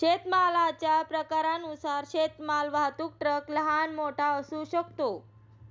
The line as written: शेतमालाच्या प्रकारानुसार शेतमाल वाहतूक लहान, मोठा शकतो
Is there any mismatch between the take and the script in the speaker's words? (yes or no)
yes